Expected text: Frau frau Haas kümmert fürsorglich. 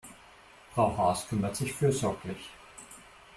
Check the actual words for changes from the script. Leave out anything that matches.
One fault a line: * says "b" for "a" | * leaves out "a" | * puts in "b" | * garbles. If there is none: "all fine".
* leaves out "frau"
* puts in "sich"